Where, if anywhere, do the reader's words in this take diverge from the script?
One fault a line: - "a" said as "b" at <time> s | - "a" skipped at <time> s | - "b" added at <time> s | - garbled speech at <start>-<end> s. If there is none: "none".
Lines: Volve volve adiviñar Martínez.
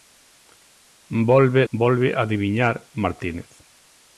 none